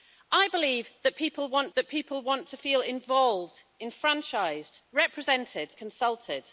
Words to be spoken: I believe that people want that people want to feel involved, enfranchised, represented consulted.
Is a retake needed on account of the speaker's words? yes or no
no